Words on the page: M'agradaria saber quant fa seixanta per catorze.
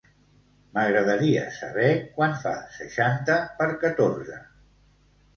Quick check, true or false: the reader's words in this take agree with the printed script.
true